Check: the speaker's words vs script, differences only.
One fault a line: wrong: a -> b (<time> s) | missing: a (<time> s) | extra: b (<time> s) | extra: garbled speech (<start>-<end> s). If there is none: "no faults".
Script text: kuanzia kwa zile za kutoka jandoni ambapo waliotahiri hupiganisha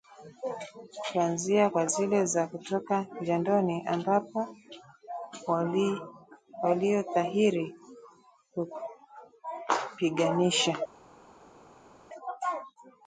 no faults